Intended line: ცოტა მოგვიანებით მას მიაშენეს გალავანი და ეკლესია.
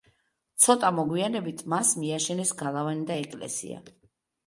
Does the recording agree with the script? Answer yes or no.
yes